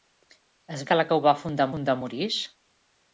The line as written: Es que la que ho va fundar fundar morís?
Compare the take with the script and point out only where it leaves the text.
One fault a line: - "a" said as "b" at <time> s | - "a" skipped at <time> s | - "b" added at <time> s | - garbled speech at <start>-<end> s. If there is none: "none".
none